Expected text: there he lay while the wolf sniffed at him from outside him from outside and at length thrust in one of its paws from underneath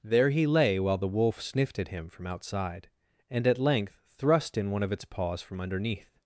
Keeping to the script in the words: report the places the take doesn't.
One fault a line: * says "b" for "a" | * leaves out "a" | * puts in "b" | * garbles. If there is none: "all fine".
* leaves out "him from outside"